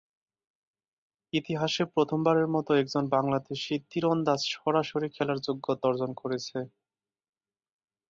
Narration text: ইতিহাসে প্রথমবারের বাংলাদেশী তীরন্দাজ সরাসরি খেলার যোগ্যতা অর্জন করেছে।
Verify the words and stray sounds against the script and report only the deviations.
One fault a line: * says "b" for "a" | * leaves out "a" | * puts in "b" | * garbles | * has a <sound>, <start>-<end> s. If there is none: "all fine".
* puts in "মতো একজন"